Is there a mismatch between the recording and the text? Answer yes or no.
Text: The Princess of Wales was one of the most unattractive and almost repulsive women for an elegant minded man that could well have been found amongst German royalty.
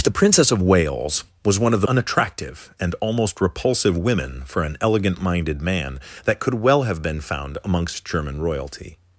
yes